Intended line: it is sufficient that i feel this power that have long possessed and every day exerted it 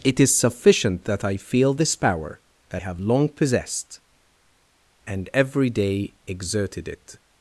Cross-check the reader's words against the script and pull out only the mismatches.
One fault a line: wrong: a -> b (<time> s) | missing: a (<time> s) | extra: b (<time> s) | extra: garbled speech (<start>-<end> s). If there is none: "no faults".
no faults